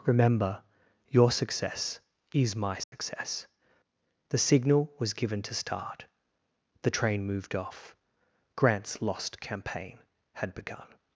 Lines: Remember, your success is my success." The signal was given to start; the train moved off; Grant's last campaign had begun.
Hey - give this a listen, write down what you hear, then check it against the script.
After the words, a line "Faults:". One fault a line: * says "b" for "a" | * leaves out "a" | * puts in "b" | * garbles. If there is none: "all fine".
Remember, your success is my success." The signal was given to start; the train moved off; Grant's lost campaign had begun.
Faults:
* says "lost" for "last"